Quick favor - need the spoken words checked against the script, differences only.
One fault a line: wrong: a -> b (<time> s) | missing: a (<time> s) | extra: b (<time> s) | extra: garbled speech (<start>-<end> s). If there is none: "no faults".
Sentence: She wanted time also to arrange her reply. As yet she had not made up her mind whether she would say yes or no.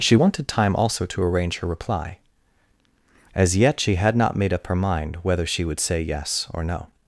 no faults